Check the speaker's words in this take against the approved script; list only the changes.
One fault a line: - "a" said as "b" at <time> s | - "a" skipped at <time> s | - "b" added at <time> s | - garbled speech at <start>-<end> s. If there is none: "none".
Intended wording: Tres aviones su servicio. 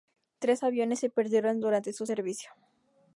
- "se perdieron durante" added at 1.0 s